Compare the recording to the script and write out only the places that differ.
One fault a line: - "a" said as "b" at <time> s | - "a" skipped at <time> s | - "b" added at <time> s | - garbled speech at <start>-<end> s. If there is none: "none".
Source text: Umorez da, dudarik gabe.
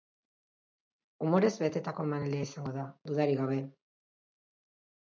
- "betetako emanaldia izango" added at 1.6 s